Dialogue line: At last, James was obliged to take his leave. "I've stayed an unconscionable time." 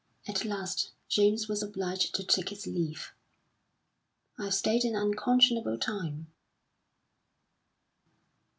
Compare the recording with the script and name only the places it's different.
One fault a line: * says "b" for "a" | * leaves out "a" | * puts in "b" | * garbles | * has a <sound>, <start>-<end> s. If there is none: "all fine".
all fine